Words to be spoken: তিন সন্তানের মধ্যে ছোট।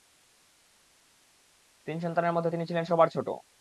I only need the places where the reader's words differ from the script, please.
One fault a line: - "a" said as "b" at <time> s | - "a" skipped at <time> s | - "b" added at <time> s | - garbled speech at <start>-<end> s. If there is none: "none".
- "তিনি ছিলেন সবার" added at 2.5 s